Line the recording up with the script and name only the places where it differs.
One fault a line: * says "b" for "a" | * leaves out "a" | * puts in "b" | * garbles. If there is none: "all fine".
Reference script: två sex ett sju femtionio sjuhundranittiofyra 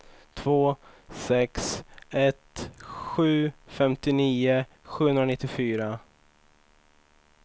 all fine